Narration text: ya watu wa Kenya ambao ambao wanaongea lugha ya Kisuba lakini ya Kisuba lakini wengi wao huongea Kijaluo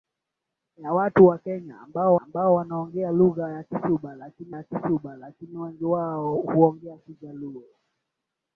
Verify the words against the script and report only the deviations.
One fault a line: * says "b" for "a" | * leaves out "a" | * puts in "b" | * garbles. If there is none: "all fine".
all fine